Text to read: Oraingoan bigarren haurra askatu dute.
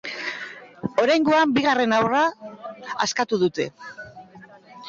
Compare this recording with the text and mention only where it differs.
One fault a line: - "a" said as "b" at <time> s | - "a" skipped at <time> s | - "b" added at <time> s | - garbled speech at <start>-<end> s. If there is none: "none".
none